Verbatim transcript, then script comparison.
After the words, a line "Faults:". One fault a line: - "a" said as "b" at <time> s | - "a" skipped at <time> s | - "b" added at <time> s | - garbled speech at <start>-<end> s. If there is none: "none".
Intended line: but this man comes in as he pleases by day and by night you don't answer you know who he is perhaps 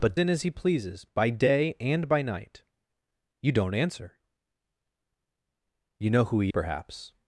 but in as he pleases by day and by night you don't answer you know who he perhaps
Faults:
- "this man comes" skipped at 0.2 s
- "is" skipped at 6.5 s